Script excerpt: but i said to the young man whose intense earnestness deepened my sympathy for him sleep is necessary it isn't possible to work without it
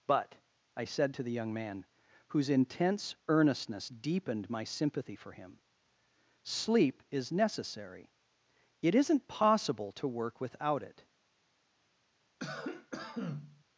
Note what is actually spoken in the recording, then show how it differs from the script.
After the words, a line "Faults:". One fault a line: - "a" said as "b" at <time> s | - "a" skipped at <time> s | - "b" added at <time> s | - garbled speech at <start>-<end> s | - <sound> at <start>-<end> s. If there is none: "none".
but i said to the young man whose intense earnestness deepened my sympathy for him sleep is necessary it isn't possible to work without it
Faults:
- cough at 12.4-13.6 s